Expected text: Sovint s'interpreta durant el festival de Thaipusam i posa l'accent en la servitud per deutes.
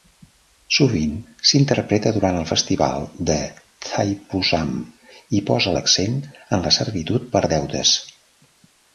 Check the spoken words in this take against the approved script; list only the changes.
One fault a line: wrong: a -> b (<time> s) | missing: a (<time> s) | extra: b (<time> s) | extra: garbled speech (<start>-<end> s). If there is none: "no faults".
no faults